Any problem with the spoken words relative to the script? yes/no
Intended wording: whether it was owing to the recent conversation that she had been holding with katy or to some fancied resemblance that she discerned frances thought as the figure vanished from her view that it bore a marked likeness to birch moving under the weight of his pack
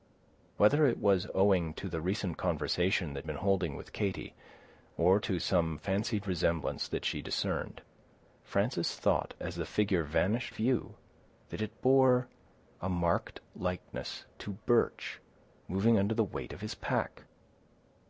yes